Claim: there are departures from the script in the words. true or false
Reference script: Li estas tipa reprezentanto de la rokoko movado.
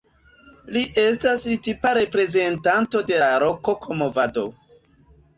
false